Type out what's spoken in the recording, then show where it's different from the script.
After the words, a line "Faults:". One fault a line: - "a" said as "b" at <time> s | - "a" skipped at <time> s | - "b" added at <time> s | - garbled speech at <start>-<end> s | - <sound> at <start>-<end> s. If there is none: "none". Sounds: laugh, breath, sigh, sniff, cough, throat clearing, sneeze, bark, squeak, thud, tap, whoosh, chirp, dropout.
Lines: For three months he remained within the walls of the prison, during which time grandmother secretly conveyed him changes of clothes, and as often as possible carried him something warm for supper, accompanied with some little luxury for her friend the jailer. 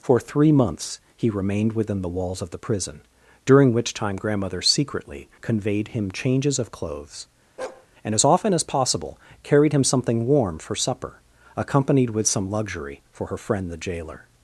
For three months he remained within the walls of the prison, during which time grandmother secretly conveyed him changes of clothes, and as often as possible carried him something warm for supper, accompanied with some luxury for her friend the jailer.
Faults:
- bark at 7.6-7.9 s
- "little" skipped at 12.5 s